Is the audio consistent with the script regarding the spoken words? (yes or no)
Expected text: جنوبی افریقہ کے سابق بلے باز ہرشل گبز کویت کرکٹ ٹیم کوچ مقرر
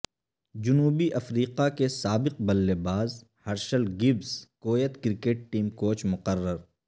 yes